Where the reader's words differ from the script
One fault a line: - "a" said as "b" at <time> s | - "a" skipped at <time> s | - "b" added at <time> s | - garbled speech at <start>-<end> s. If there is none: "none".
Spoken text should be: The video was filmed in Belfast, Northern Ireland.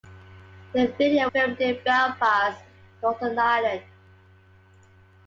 - "was" skipped at 1.3 s